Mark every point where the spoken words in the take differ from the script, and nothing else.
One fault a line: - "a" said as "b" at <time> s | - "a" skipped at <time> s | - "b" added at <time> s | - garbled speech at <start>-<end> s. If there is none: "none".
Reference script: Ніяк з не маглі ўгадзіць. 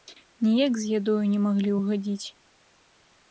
- "ядою" added at 1.0 s